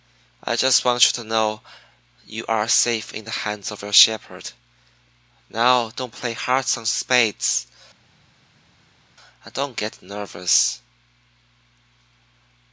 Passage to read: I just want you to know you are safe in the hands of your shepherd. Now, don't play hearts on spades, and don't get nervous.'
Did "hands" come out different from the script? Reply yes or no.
no